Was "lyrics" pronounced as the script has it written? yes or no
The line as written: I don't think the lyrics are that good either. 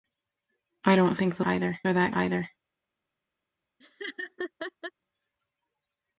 no